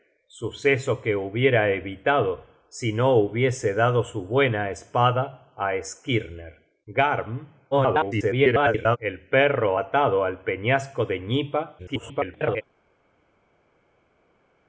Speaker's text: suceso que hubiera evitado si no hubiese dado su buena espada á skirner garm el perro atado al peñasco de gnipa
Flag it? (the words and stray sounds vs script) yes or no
yes